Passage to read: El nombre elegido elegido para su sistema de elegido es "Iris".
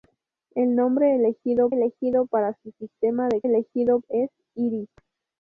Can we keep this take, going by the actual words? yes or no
yes